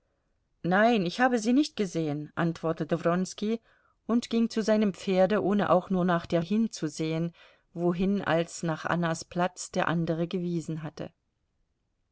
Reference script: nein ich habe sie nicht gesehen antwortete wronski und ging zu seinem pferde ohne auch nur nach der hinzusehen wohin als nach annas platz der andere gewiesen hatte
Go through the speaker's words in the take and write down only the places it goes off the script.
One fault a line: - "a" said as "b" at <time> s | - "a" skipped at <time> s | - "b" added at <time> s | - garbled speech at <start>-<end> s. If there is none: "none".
none